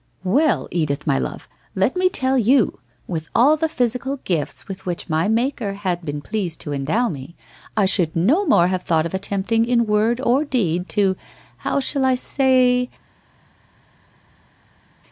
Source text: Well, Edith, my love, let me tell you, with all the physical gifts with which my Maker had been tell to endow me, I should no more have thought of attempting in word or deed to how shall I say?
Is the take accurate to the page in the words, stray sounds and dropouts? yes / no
no